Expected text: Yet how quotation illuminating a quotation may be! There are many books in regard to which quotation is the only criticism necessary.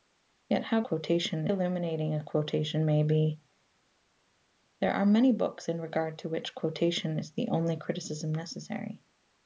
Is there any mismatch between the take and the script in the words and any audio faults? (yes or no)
no